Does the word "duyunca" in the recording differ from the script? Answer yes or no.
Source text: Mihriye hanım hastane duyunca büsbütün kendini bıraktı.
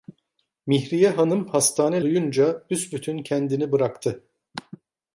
no